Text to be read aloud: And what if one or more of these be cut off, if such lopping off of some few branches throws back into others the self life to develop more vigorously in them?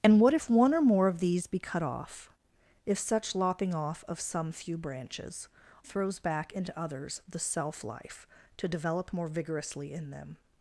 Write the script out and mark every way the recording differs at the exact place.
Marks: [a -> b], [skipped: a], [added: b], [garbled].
And what if one or more of these be cut off, if such lopping off of some few branches throws back into others the self life to develop more vigorously in them?